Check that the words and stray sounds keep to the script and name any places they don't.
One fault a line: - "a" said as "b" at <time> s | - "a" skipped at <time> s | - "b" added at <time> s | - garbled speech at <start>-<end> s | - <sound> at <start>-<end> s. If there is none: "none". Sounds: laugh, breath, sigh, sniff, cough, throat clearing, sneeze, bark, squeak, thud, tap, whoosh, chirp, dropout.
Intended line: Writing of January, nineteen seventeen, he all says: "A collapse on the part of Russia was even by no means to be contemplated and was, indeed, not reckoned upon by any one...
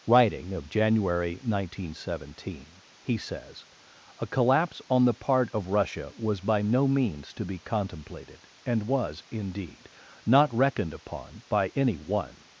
- "all" skipped at 3.2 s
- "even" skipped at 6.4 s